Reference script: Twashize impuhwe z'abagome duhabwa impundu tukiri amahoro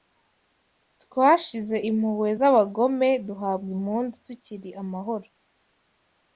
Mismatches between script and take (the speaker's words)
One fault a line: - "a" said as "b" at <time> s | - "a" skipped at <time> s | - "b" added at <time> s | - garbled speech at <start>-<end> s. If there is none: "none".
none